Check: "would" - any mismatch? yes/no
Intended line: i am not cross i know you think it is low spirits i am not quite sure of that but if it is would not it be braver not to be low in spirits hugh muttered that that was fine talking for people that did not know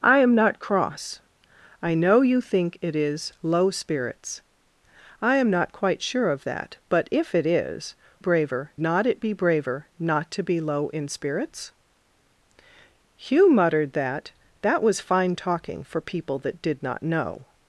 yes